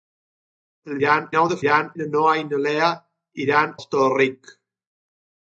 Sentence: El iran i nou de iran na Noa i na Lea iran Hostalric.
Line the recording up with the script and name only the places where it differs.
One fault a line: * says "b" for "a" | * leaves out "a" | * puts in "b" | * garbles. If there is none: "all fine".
all fine